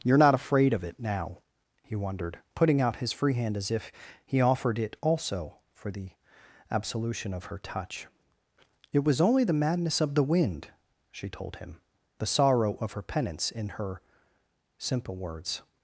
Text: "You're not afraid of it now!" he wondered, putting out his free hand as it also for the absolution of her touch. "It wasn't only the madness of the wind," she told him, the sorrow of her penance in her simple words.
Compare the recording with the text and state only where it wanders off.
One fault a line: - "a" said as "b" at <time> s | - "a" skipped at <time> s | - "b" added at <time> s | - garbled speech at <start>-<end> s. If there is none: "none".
- "if he offered" added at 3.7 s
- "wasn't" said as "was" at 9.0 s